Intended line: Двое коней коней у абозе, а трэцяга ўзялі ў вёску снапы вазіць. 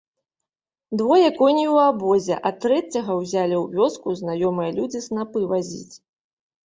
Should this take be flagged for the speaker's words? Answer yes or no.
yes